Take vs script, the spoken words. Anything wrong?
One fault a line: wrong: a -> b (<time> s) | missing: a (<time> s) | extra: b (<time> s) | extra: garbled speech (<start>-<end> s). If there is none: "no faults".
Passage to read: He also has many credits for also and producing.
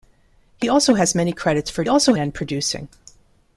no faults